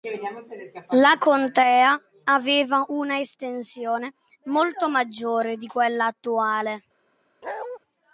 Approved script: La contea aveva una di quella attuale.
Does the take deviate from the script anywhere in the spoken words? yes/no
yes